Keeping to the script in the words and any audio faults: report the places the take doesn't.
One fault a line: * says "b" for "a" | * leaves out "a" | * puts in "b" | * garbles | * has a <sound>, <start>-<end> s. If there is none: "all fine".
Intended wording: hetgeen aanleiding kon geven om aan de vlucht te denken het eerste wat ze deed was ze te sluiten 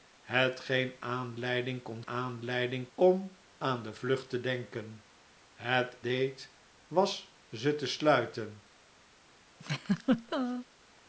* says "aanleiding" for "geven"
* leaves out "eerste wat ze"
* has a laugh, 9.6-10.7 s